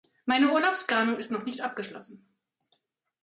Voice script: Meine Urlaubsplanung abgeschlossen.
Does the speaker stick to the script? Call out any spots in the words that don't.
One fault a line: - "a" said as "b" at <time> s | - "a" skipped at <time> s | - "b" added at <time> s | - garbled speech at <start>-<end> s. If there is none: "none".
- "ist noch nicht" added at 1.2 s